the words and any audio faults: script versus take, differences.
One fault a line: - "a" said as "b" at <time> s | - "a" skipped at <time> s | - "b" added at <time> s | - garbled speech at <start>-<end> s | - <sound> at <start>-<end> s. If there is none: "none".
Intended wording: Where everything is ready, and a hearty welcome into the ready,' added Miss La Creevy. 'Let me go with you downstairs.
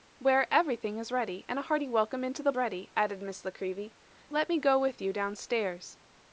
none